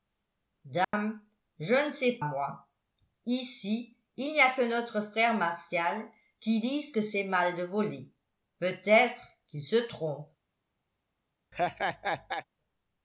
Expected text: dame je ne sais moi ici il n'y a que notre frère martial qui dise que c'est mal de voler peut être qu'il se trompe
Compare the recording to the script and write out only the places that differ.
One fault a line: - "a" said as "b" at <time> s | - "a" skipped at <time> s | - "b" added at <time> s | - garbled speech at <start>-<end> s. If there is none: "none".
none